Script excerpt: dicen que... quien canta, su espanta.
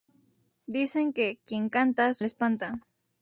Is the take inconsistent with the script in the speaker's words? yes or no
no